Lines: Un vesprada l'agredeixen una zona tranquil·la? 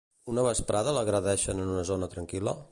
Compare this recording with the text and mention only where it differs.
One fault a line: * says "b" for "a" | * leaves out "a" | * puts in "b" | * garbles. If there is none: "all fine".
* says "Una" for "Un"
* puts in "en"